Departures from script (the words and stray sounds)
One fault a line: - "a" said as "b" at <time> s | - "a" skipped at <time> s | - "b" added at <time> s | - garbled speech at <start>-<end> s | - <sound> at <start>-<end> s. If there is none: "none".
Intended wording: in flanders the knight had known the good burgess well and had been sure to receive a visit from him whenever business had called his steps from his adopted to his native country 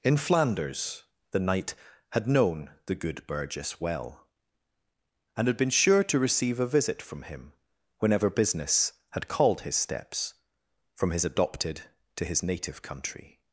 none